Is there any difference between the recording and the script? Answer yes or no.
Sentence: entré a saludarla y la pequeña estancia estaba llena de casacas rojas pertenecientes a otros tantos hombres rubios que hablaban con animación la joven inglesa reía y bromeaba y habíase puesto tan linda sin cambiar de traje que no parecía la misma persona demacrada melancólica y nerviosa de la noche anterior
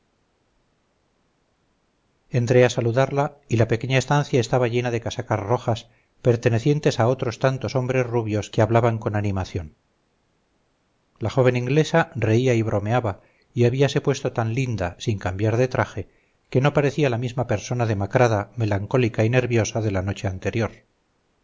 no